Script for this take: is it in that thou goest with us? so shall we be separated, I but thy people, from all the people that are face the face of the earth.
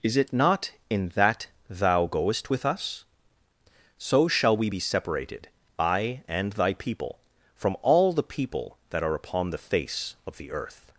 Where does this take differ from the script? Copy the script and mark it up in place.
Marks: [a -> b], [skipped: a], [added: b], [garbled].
is it [added: not] in that thou goest with us? so shall we be separated, I [but -> and] thy people, from all the people that are [face -> upon] the face of the earth.